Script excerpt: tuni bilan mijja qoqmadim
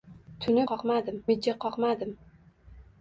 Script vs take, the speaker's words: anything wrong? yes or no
yes